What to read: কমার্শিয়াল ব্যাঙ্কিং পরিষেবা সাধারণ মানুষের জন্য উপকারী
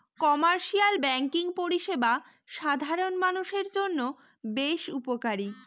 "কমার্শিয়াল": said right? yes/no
yes